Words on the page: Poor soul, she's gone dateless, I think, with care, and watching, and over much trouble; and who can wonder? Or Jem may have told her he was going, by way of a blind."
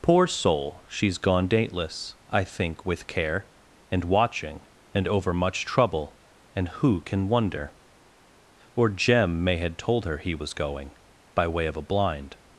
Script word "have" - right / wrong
wrong